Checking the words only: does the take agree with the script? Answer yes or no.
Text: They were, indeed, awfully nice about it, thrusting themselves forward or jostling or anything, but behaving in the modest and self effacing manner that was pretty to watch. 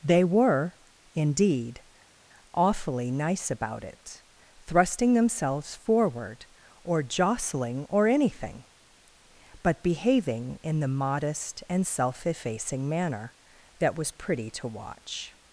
yes